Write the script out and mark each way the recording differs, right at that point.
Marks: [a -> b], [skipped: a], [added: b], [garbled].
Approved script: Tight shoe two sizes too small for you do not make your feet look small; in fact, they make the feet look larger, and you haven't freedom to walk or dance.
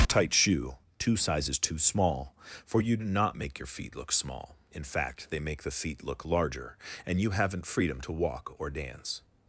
Tight shoe two sizes too small for you do not make your feet look small; in fact, they make the feet look larger, and you haven't freedom to walk or dance.